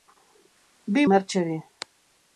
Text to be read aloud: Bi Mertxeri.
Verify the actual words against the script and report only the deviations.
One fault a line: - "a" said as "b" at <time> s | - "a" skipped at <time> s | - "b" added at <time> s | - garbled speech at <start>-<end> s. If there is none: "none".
none